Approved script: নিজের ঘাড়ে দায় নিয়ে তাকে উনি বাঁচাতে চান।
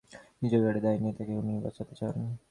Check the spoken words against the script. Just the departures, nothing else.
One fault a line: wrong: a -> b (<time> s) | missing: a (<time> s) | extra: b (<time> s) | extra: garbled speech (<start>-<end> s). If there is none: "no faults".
no faults